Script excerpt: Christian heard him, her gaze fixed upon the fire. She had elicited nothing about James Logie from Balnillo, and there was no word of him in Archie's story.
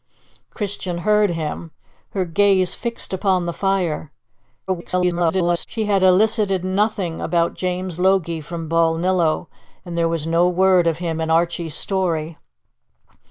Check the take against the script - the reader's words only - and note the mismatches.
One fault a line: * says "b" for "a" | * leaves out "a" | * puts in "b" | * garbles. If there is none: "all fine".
* garbles